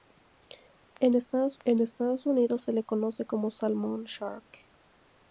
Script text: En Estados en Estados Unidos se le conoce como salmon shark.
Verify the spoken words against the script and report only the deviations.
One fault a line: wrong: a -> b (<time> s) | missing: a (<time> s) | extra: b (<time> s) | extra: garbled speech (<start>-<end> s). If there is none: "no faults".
no faults